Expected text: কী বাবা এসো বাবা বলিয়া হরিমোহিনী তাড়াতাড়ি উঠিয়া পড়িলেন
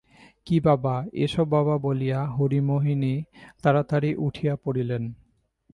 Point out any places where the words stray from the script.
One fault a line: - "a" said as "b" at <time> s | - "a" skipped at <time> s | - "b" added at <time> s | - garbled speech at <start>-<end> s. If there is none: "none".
none